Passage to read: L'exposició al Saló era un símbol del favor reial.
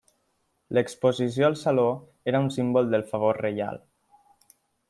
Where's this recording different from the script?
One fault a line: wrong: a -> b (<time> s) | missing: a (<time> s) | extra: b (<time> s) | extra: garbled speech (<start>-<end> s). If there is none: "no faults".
no faults